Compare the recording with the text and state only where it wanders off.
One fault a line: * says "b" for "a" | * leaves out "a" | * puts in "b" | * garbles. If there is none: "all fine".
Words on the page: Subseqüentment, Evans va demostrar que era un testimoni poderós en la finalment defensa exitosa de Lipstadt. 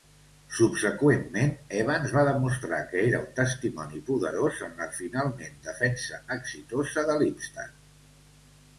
all fine